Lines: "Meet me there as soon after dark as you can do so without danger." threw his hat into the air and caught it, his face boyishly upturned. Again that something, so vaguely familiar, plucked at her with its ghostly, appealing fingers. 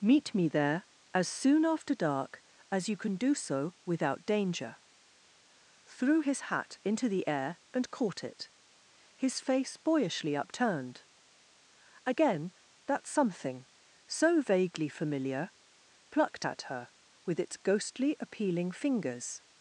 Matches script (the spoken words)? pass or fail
pass